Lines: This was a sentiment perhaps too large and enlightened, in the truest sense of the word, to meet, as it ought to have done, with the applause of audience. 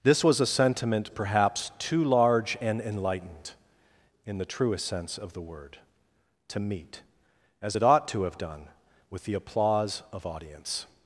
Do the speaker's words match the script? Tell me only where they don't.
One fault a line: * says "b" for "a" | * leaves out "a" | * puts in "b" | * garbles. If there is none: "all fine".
all fine